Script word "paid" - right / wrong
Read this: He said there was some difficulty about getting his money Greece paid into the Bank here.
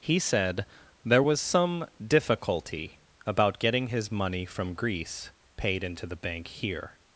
right